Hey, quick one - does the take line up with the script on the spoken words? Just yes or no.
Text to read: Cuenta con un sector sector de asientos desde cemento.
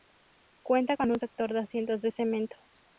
no